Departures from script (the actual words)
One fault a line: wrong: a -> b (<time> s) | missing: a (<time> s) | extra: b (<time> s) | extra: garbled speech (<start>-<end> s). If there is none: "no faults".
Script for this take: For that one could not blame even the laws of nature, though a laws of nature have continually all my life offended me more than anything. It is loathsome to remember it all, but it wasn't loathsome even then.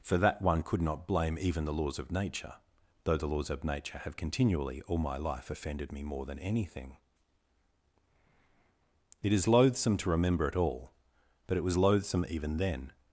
wrong: a -> the (3.2 s)
wrong: wasn't -> was (11.6 s)